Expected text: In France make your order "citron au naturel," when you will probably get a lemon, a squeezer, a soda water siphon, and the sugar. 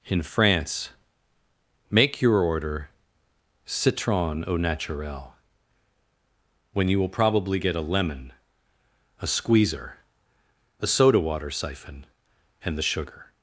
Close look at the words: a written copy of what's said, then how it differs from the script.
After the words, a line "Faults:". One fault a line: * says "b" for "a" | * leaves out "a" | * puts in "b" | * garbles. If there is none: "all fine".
In France make your order "citron au naturel," when you will probably get a lemon, a squeezer, a soda water siphon, and the sugar.
Faults:
all fine